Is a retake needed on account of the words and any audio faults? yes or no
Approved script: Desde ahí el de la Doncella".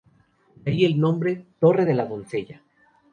yes